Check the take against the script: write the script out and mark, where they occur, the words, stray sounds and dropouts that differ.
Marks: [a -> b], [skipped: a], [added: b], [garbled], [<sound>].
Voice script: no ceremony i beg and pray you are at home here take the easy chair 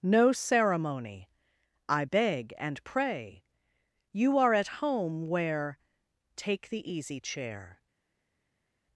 no ceremony i beg and pray you are at home [here -> where] take the easy chair